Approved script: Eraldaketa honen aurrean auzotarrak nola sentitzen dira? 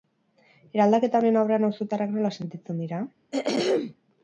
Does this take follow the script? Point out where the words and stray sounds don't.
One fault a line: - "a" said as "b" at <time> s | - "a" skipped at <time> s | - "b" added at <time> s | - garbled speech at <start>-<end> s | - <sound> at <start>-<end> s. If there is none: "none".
- throat clearing at 3.3-4.0 s